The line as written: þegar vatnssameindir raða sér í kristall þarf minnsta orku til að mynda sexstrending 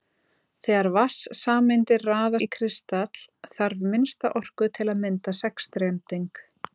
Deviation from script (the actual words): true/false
true